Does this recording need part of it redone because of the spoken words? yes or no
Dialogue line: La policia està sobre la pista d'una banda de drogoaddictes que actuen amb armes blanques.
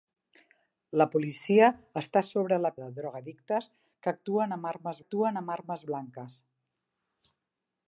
yes